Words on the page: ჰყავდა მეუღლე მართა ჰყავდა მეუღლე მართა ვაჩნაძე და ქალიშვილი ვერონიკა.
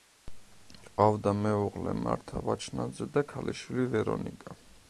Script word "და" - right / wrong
right